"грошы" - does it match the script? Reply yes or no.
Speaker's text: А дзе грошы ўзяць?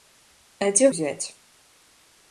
no